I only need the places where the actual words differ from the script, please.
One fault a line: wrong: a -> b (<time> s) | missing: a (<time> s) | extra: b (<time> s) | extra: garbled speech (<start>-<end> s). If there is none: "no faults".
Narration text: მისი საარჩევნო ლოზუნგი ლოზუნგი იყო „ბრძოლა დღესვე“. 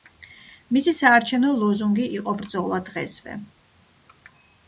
missing: ლოზუნგი (2.1 s)